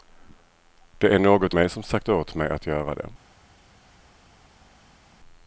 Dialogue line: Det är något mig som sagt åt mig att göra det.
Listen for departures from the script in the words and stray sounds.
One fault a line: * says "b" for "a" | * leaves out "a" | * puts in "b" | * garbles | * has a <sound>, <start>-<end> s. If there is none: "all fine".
all fine